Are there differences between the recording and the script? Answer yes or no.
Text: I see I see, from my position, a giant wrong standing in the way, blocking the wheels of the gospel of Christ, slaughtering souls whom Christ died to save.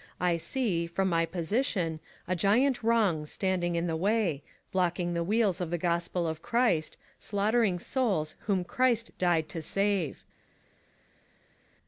yes